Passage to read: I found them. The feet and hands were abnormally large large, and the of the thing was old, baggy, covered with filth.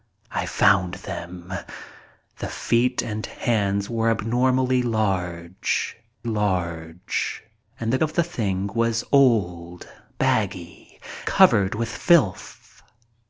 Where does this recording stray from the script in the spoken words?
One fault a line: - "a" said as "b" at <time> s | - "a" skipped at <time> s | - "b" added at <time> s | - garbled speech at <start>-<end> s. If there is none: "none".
none